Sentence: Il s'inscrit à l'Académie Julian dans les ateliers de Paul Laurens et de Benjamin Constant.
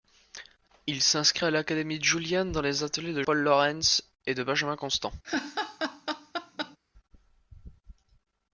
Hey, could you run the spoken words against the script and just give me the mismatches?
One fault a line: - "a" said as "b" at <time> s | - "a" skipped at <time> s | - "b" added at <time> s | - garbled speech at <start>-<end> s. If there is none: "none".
none